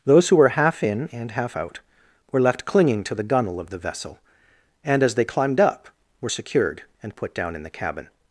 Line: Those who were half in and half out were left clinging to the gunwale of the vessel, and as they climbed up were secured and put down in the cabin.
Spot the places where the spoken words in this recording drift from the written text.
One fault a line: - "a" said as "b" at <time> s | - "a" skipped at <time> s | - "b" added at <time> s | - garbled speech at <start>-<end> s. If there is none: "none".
none